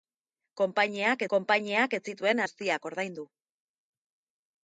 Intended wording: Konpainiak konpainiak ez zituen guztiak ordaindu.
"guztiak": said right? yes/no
yes